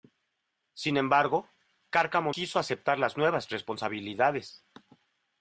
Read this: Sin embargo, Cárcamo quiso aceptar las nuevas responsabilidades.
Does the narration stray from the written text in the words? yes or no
no